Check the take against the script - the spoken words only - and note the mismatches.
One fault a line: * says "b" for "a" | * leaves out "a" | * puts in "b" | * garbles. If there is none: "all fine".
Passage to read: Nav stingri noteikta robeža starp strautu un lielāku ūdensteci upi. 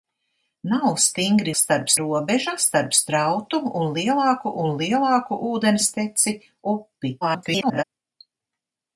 * says "starp" for "noteikta"
* puts in "un lielāku"
* garbles